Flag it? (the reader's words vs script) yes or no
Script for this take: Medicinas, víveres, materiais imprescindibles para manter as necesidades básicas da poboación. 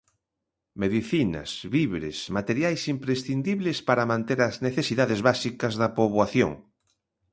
no